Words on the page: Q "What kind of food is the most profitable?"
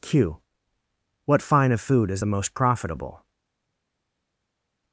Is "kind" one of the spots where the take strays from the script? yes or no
yes